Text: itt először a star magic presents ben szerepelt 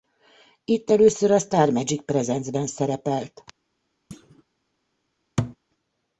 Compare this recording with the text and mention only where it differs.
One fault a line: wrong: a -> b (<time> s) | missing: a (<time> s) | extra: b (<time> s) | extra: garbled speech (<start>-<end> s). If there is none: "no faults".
no faults